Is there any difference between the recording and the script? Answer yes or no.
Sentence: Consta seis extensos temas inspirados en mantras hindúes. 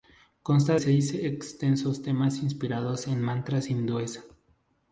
no